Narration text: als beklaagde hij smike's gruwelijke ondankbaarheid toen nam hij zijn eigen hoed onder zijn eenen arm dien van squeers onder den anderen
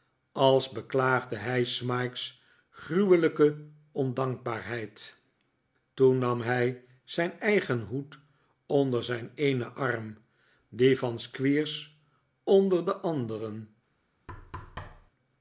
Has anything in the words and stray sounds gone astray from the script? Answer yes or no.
yes